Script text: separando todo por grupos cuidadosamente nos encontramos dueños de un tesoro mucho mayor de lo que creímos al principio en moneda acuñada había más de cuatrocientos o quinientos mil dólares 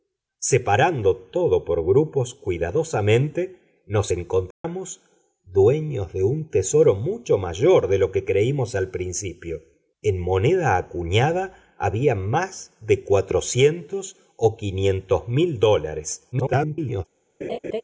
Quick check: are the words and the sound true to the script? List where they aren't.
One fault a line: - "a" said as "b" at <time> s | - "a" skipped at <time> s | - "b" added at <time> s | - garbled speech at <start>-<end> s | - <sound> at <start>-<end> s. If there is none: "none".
- dropout at 4.5-4.6 s
- garbled speech at 16.3-17.1 s
- laugh at 17.4-17.8 s